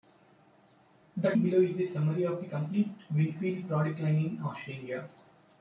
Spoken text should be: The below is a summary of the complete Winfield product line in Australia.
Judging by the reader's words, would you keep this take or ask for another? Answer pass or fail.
pass